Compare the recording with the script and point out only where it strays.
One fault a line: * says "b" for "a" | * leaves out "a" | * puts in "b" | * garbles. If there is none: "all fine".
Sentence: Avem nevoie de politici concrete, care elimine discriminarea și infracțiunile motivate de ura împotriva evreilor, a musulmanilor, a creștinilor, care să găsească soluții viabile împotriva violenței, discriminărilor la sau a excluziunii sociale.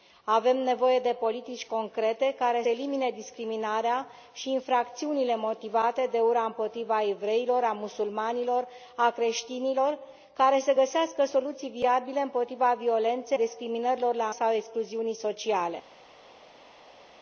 all fine